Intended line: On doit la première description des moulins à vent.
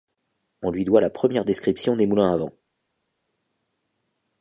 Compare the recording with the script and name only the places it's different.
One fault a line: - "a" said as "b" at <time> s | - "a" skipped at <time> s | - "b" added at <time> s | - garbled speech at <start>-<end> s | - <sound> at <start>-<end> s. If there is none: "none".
- "lui" added at 0.7 s